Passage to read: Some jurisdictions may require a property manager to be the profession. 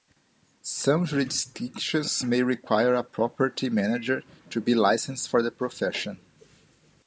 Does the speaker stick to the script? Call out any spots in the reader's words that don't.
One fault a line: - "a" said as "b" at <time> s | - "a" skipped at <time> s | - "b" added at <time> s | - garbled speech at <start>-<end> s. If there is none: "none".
- "licensed for" added at 4.7 s